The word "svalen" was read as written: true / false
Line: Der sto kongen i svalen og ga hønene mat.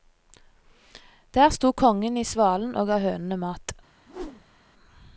true